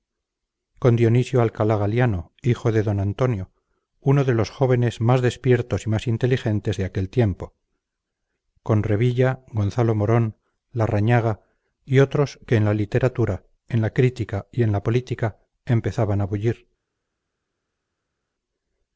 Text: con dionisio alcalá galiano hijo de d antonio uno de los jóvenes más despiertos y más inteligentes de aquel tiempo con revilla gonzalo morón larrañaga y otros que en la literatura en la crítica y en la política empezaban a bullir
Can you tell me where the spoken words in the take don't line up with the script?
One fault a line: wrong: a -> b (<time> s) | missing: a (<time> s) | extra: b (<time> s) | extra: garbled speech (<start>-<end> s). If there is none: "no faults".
no faults